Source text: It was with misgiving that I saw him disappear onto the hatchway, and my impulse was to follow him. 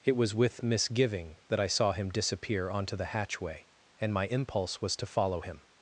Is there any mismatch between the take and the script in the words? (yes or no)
no